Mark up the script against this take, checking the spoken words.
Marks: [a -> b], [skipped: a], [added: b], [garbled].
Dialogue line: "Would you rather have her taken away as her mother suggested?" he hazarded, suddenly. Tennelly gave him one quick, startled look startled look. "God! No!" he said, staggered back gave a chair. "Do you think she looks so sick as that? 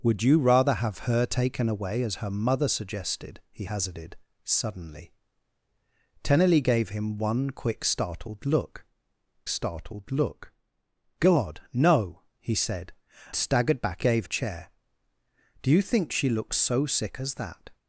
"Would you rather have her taken away as her mother suggested?" he hazarded, suddenly. Tennelly gave him one quick, startled look startled look. "God! No!" he said, staggered back gave a chair. "Do you think she looks so sick as that?